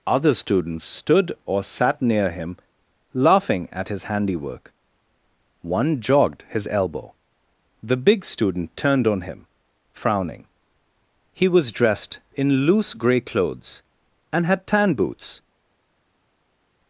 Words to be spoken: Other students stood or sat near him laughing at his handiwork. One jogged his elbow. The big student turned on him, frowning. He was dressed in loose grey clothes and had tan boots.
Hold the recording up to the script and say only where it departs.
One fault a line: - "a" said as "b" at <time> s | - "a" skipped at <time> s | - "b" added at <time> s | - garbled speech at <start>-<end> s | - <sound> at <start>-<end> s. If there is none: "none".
none